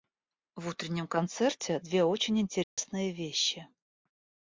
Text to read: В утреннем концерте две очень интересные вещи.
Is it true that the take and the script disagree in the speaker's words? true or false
false